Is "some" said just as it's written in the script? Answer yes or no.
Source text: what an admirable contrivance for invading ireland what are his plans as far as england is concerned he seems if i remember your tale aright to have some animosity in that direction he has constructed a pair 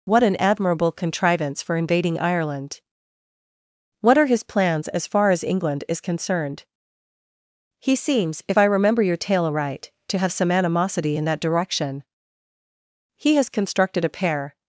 yes